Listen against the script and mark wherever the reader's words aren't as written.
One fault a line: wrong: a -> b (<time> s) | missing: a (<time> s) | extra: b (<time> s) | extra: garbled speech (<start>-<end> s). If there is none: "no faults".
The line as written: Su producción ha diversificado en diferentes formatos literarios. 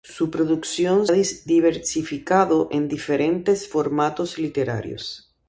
no faults